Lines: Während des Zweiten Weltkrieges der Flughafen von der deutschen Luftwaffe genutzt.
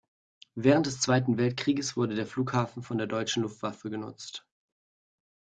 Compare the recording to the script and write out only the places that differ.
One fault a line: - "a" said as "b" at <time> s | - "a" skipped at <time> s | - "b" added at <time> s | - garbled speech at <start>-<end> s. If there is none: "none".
- "wurde" added at 1.9 s